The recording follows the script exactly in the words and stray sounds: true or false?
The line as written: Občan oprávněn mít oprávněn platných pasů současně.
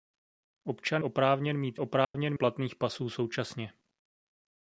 false